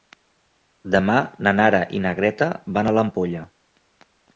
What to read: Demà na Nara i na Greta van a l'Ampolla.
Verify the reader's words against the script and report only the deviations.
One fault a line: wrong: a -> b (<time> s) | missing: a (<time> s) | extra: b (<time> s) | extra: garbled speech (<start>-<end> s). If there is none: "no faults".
no faults